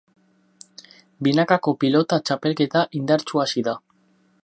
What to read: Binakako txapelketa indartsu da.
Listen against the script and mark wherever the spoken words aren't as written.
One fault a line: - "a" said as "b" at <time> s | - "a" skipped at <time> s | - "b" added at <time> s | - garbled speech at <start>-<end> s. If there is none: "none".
- "pilota" added at 1.8 s
- "hasi" added at 3.5 s